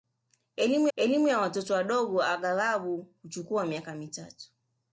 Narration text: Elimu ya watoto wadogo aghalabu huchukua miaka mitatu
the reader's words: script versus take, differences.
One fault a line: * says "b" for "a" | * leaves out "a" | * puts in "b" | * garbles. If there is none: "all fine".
* puts in "elimu"